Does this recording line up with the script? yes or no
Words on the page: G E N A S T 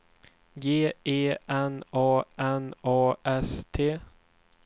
no